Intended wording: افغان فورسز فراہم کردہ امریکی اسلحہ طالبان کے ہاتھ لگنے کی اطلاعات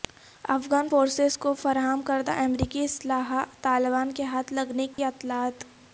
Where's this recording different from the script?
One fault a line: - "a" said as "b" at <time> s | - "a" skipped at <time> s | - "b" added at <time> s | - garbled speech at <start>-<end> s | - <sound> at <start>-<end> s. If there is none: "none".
- "کو" added at 1.4 s
- dropout at 4.9-5.0 s